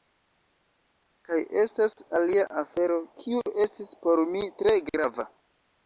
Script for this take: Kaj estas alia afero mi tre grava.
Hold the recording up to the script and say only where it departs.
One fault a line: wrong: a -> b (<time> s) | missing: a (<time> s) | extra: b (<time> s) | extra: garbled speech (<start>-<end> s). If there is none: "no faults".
extra: kiu estis por (3.2 s)